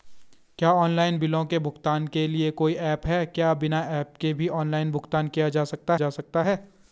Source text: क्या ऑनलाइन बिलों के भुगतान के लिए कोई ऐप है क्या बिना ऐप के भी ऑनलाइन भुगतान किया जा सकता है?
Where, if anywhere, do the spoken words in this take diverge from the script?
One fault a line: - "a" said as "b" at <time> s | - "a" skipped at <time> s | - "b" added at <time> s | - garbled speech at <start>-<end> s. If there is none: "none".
- "जा सकता" added at 5.9 s